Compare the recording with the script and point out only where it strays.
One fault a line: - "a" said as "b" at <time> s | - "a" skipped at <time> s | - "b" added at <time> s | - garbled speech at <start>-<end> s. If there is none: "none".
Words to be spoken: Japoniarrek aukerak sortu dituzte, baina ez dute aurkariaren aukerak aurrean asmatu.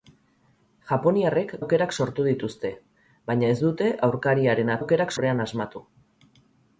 none